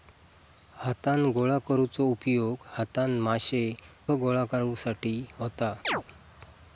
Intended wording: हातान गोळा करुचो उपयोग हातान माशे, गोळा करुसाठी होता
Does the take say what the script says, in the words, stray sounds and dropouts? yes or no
no